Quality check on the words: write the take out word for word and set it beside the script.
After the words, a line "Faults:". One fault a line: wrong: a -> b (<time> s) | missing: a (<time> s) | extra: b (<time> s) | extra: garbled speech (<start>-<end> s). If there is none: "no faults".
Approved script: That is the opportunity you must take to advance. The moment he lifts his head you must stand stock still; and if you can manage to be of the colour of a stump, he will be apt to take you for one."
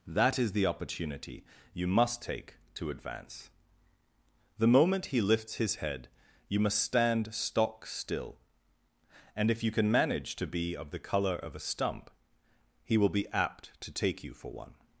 That is the opportunity you must take to advance. The moment he lifts his head you must stand stock still; and if you can manage to be of the colour of a stump, he will be apt to take you for one."
Faults:
no faults